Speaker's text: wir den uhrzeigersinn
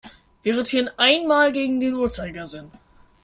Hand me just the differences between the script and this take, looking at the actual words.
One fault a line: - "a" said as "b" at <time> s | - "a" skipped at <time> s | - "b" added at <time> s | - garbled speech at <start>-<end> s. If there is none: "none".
- "rotieren einmal gegen" added at 0.6 s